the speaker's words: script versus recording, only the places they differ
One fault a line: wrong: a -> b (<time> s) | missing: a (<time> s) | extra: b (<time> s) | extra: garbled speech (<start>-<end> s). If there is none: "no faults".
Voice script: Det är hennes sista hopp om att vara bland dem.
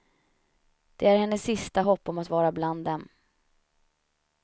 no faults